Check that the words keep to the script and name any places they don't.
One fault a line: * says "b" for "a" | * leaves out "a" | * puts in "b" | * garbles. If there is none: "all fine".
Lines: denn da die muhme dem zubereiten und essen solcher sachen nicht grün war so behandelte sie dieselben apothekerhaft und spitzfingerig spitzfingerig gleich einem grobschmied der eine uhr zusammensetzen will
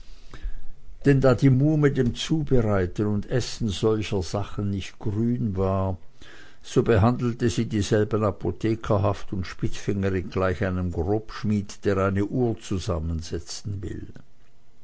* leaves out "spitzfingerig"